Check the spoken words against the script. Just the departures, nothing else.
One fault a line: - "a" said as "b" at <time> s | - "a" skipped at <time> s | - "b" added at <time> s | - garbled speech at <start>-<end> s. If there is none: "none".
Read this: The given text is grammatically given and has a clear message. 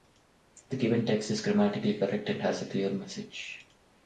- "given" said as "correct" at 2.0 s